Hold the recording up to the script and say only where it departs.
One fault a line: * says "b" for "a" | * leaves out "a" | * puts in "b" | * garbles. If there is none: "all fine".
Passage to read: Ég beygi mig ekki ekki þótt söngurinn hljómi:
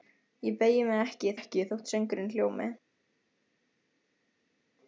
all fine